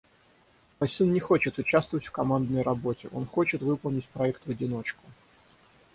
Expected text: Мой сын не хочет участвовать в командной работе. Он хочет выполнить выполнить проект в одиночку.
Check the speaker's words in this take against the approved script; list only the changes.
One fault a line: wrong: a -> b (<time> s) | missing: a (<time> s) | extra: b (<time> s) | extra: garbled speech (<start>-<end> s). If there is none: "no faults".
missing: выполнить (4.1 s)